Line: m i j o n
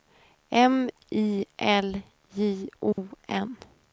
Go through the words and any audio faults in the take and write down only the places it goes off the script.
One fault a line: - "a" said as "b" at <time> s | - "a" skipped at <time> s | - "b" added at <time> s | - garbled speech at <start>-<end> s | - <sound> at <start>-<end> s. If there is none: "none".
- "l" added at 1.6 s
- dropout at 2.9-3.0 s